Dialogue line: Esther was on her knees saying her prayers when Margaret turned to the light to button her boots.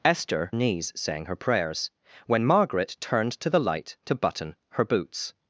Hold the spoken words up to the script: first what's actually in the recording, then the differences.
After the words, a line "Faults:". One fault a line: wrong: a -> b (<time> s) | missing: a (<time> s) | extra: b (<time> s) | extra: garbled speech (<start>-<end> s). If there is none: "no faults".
Esther knees saying her prayers when Margaret turned to the light to button her boots.
Faults:
missing: was on her (0.5 s)